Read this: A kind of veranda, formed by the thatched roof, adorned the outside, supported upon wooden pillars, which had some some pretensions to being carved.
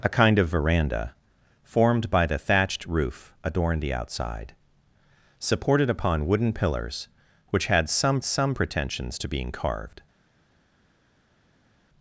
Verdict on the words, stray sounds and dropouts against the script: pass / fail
pass